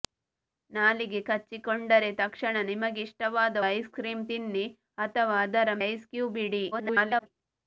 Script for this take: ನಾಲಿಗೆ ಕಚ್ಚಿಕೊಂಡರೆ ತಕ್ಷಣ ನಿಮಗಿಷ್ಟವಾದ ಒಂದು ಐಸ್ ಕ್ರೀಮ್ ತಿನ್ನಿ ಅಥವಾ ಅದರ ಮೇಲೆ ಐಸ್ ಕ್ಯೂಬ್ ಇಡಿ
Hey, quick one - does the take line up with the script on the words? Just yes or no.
no